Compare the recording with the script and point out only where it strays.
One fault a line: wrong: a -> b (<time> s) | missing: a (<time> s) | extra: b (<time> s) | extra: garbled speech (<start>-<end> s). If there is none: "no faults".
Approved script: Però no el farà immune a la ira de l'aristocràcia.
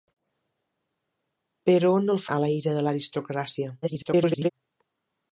missing: farà immune (2.2 s)
extra: garbled speech (3.8-4.5 s)